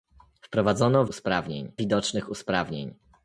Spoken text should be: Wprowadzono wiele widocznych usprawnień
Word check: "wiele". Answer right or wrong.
wrong